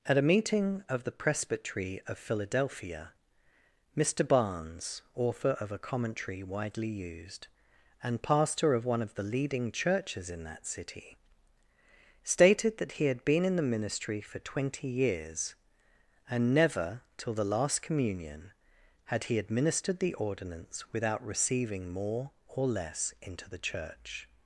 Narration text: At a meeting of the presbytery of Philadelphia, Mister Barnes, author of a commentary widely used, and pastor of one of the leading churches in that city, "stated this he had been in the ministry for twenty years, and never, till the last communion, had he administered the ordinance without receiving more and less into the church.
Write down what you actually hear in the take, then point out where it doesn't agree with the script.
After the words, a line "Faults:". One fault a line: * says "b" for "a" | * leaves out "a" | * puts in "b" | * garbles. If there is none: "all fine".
At a meeting of the presbytery of Philadelphia, Mister Barnes, author of a commentary widely used, and pastor of one of the leading churches in that city, "stated that he had been in the ministry for twenty years, and never, till the last communion, had he administered the ordinance without receiving more or less into the church.
Faults:
* says "that" for "this"
* says "or" for "and"